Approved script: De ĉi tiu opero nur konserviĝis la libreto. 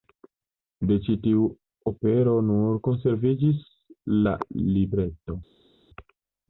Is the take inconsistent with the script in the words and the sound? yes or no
no